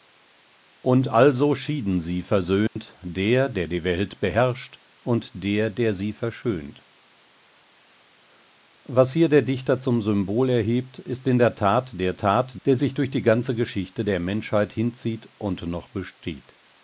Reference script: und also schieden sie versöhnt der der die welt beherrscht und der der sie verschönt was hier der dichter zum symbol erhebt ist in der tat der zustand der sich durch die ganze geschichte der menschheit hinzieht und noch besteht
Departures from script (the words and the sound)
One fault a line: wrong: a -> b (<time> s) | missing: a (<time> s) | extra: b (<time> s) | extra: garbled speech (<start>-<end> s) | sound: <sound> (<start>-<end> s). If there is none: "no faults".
sound: dropout (2.7-2.8 s)
wrong: zustand -> tat (12.1 s)